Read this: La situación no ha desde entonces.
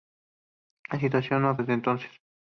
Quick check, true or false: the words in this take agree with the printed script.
true